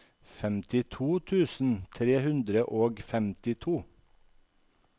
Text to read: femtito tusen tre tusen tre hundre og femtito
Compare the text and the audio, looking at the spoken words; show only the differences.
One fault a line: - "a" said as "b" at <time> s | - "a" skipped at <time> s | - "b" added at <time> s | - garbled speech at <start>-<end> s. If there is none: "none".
- "tusen tre" skipped at 2.1 s